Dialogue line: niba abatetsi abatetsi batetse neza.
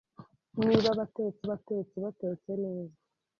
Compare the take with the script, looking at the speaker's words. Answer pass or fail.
pass